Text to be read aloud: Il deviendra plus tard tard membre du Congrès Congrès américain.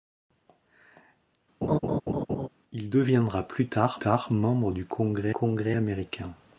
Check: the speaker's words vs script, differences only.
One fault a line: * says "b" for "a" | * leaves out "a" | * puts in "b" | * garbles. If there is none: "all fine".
all fine